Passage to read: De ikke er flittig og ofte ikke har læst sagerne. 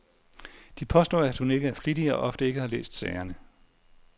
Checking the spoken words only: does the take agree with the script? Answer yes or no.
no